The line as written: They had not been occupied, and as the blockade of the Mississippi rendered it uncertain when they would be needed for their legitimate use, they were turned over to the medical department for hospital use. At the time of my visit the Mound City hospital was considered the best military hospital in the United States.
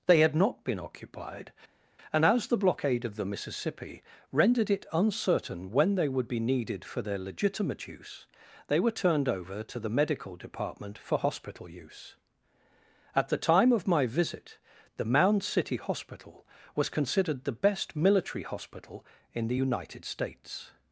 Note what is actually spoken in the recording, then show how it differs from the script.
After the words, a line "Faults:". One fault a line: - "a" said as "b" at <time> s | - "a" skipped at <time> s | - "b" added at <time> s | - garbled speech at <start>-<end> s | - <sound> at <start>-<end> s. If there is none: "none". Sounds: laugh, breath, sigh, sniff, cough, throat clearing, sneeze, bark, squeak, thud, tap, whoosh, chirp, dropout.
They had not been occupied, and as the blockade of the Mississippi rendered it uncertain when they would be needed for their legitimate use, they were turned over to the medical department for hospital use. At the time of my visit the Mound City hospital was considered the best military hospital in the United States.
Faults:
none